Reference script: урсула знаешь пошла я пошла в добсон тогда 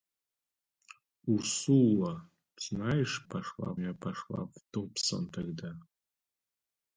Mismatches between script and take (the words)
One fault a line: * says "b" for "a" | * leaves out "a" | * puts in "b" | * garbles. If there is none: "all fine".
all fine